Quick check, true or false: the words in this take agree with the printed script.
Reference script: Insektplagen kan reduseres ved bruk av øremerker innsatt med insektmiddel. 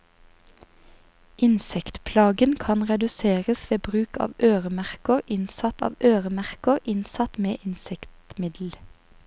false